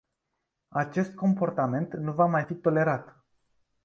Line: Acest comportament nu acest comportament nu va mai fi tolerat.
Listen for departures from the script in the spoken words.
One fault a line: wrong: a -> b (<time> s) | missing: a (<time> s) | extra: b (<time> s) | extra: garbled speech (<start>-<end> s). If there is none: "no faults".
missing: acest comportament nu (2.1 s)